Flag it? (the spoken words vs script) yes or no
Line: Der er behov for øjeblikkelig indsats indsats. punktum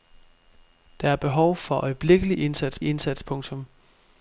no